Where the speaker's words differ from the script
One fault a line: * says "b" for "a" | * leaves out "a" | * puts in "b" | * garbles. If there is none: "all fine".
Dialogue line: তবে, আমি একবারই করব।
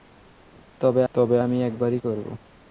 * puts in "তবে"